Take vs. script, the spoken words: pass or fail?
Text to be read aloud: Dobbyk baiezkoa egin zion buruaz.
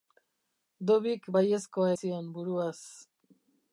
fail